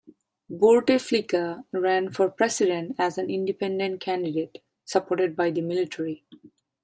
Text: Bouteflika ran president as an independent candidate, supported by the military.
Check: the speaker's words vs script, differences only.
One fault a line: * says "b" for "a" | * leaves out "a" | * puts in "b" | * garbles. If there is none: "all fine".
* puts in "for"